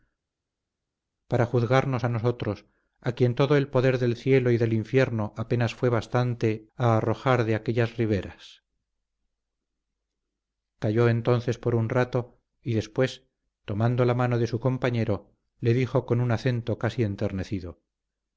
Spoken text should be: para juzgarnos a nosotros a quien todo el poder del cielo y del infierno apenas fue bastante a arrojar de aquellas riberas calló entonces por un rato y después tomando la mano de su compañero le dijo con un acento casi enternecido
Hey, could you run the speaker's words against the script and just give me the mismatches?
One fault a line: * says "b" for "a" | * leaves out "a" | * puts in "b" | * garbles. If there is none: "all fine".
all fine